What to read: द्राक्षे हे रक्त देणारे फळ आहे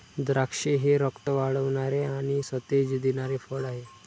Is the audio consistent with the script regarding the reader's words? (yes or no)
no